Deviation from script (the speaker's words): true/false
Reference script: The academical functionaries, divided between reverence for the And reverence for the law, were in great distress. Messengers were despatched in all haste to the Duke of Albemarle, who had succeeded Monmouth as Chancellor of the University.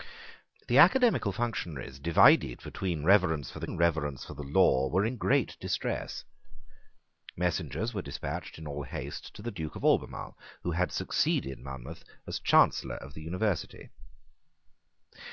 false